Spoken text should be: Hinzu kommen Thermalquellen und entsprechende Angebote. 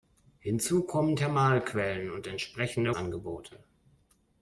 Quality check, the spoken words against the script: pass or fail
pass